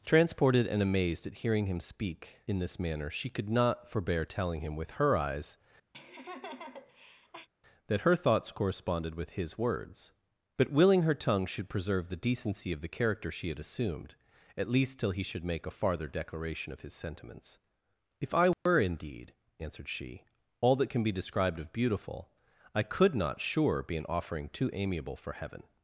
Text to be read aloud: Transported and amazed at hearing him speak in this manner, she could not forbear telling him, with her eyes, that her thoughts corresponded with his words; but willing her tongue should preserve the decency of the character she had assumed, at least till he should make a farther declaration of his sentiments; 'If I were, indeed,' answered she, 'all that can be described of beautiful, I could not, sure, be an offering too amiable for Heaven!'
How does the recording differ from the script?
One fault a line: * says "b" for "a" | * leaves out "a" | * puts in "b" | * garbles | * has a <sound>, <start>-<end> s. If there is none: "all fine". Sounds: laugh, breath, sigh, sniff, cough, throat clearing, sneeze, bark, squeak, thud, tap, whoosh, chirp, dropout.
* has a laugh, 5.9-7.5 s
* has a dropout, 18.5-18.7 s